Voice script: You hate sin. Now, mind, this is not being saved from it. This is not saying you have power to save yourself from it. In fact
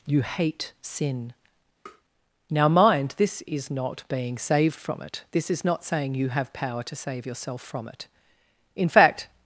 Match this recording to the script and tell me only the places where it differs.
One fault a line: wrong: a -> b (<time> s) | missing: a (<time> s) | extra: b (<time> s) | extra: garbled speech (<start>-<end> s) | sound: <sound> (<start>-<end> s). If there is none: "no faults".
sound: tap (1.9-2.0 s)